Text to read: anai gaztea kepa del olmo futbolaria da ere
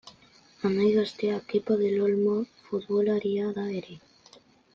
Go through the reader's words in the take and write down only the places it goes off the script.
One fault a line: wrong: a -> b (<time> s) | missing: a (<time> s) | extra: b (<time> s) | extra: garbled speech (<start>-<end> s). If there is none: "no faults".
no faults